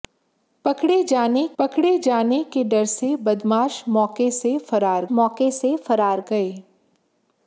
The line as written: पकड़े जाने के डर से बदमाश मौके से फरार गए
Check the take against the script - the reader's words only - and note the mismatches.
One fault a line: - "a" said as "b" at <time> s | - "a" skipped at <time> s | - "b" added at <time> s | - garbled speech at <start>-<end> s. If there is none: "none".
- "पकड़े जाने" added at 1.6 s
- "मौके से फरार" added at 5.1 s